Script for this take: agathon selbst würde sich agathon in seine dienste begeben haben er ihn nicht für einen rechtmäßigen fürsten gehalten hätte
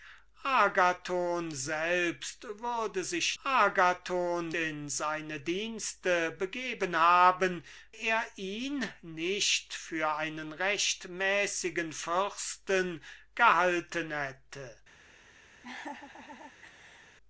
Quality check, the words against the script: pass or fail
pass